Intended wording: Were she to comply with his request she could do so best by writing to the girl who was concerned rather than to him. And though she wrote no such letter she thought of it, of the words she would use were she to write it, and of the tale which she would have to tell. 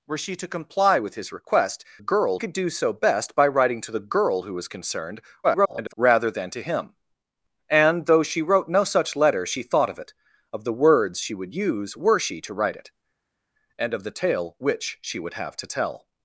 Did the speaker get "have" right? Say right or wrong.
right